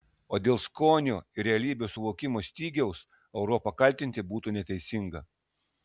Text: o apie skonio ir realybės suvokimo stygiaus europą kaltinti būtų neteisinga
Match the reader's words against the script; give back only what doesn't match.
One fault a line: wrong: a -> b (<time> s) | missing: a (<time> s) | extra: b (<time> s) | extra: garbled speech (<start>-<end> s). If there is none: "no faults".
wrong: apie -> dėl (0.5 s)